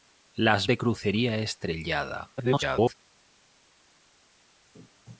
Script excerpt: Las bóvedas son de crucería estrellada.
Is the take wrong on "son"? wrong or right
wrong